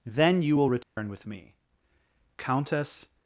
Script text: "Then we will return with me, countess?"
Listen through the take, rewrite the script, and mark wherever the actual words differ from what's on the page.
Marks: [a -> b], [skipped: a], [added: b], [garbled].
"Then [we -> you] will return with me, countess?"